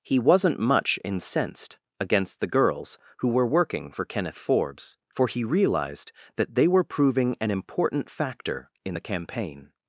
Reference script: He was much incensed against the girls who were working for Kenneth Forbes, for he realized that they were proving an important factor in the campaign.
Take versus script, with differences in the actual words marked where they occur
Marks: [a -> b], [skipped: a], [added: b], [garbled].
He [was -> wasn't] much incensed against the girls who were working for Kenneth Forbes, for he realized that they were proving an important factor in the campaign.